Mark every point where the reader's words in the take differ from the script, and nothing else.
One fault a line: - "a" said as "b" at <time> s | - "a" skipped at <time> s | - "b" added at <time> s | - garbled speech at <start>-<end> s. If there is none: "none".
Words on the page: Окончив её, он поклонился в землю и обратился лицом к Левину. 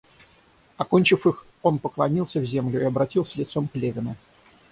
- "её" said as "их" at 1.3 s